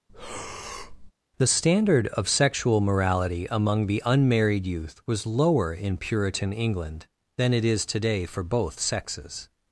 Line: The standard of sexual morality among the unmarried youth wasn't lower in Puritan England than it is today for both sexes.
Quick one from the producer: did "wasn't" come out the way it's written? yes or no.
no